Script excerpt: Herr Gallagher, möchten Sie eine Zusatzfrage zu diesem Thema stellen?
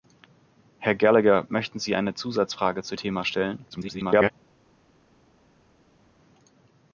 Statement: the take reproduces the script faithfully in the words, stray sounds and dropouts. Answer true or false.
false